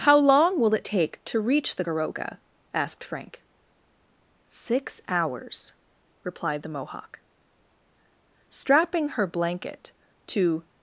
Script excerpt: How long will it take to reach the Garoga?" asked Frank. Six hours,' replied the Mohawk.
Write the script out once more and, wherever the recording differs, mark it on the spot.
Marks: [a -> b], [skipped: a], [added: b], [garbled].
How long will it take to reach the Garoga?" asked Frank. Six hours,' replied the Mohawk. [added: Strapping her blanket to]